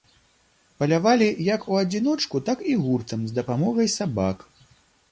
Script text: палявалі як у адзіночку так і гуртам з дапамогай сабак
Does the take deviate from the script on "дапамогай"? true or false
false